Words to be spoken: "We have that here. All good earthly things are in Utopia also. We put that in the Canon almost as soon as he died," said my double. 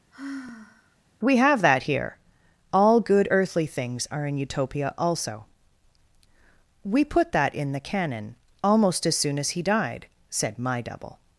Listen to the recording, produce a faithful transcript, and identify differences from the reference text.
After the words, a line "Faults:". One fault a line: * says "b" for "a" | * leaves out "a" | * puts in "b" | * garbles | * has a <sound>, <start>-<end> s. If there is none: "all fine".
"We have that here. All good earthly things are in Utopia also. We put that in the Canon almost as soon as he died," said my double.
Faults:
* has a sigh, 0.1-1.0 s